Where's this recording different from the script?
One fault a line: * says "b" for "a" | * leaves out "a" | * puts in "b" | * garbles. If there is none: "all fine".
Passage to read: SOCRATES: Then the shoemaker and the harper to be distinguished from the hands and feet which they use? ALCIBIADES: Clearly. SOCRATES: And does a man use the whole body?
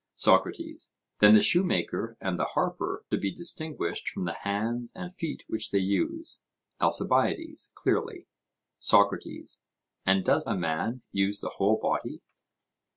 all fine